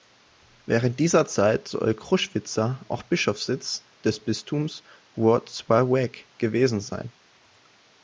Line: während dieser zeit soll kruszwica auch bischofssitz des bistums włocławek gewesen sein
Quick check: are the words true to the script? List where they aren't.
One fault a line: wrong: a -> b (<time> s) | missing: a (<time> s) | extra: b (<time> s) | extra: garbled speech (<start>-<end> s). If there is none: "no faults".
no faults